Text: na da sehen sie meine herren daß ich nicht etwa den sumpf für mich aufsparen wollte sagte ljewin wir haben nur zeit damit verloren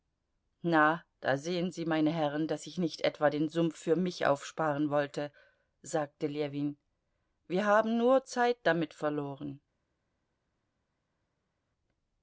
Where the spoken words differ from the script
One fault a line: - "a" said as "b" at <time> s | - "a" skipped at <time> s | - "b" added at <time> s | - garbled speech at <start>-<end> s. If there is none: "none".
none